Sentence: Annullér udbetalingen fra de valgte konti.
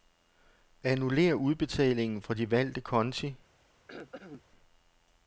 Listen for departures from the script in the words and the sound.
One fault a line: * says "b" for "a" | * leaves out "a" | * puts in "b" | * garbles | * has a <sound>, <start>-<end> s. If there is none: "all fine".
* has a throat clearing, 3.9-4.4 s